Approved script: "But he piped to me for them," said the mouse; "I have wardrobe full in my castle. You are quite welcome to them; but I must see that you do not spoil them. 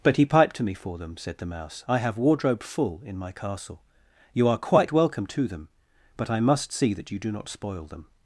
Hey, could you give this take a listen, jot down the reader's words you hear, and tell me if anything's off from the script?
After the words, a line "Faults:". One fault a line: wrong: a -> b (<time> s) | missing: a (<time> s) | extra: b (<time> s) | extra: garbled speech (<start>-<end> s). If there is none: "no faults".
"But he piped to me for them," said the mouse; "I have wardrobe full in my castle. You are quite welcome to them; but I must see that you do not spoil them.
Faults:
no faults